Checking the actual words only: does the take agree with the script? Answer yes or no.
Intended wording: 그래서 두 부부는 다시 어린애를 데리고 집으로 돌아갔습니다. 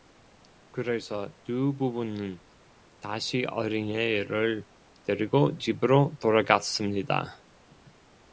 yes